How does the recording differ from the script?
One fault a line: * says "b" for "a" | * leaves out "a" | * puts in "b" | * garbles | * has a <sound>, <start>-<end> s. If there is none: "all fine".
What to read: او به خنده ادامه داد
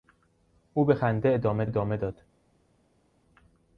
* puts in "ادامه"